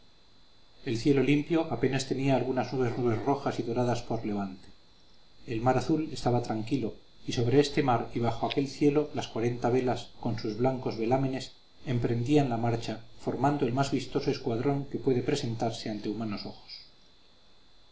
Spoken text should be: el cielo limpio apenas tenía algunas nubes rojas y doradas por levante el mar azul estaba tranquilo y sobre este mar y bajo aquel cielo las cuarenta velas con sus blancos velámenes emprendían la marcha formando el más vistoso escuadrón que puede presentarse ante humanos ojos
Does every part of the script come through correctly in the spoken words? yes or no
no